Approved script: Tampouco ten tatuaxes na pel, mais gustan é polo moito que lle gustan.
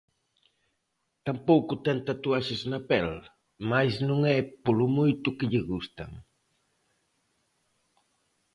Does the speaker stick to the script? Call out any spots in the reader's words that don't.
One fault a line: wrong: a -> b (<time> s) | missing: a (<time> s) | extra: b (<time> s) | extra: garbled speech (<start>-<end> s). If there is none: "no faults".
wrong: gustan -> non (4.1 s)